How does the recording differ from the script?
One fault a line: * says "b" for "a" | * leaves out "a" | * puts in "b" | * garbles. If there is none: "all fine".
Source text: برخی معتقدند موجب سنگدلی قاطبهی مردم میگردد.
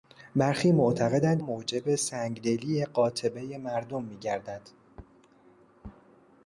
all fine